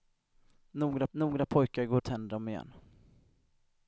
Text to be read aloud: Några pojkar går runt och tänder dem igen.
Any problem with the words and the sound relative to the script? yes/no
yes